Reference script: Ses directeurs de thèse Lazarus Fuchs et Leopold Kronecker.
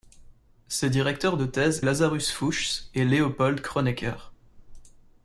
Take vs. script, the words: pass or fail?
pass